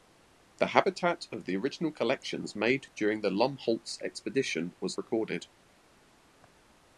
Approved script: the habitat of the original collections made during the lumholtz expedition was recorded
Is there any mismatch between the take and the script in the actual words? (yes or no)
no